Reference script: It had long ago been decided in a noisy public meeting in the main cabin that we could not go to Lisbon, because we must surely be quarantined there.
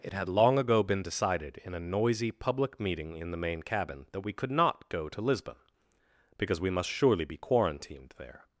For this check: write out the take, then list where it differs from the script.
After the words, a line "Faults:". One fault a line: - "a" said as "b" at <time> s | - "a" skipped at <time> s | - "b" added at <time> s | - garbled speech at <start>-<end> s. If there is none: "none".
It had long ago been decided in a noisy public meeting in the main cabin that we could not go to Lisbon, because we must surely be quarantined there.
Faults:
none